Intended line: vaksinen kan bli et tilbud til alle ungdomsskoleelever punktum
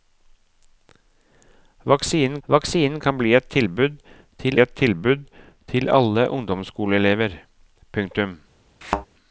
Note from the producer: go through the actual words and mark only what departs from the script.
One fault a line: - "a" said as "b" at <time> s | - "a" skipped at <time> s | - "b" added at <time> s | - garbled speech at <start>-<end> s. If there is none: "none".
- "vaksinen" added at 2.5 s
- "et tilbud til" added at 4.6 s